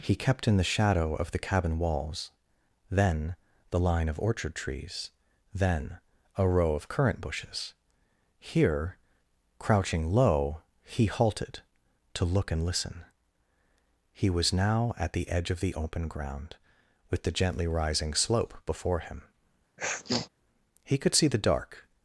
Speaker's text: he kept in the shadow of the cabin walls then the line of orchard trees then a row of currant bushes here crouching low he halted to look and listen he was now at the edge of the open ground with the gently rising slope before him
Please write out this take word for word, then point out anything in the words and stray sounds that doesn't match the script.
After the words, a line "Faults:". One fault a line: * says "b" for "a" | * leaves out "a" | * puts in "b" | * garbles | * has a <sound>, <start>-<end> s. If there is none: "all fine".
he kept in the shadow of the cabin walls then the line of orchard trees then a row of currant bushes here crouching low he halted to look and listen he was now at the edge of the open ground with the gently rising slope before him he could see the dark
Faults:
* has a sniff, 19.8-20.3 s
* puts in "he could see the dark"